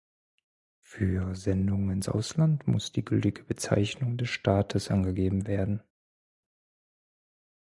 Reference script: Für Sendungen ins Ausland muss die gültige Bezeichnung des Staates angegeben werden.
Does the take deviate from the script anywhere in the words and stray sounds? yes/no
no